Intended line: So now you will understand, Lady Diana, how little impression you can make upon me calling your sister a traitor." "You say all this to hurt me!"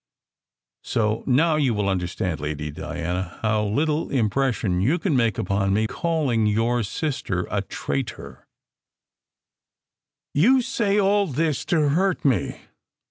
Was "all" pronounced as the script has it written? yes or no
yes